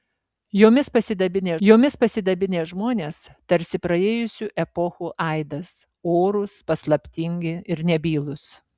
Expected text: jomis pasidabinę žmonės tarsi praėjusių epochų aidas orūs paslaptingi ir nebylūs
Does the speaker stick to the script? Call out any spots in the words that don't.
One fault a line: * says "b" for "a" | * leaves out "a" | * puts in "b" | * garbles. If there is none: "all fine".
* puts in "jomis pasidabinę"